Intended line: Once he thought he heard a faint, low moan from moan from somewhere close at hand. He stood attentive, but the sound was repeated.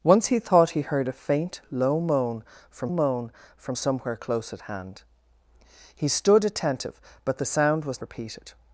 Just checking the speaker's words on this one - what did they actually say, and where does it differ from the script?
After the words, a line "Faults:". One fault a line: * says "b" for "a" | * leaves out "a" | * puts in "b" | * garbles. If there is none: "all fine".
Once he thought he heard a faint, low moan from moan from somewhere close at hand. He stood attentive, but the sound was repeated.
Faults:
all fine